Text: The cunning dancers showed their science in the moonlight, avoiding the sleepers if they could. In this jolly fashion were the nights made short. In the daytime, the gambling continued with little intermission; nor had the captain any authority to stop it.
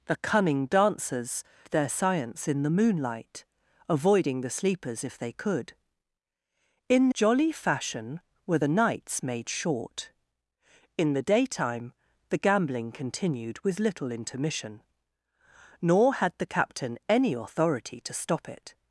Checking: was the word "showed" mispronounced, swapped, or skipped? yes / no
yes